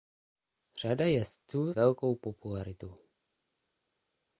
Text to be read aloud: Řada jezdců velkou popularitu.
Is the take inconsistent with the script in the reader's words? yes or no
no